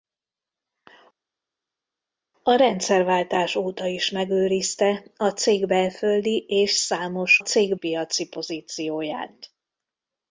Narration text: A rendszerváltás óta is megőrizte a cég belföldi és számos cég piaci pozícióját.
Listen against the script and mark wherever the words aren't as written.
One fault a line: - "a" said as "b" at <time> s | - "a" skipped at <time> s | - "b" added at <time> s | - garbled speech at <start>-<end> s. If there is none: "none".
none